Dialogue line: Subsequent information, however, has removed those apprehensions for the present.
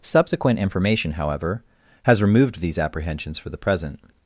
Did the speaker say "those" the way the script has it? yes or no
no